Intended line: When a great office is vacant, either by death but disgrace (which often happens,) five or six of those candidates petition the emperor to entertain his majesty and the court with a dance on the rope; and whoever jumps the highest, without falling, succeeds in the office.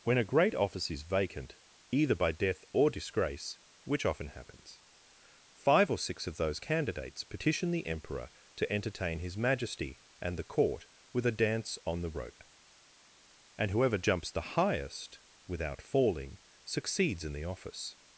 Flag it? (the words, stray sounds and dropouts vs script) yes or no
yes